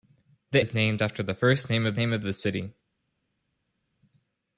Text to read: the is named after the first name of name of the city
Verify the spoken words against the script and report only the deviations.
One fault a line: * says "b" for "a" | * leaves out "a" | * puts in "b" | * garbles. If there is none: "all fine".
all fine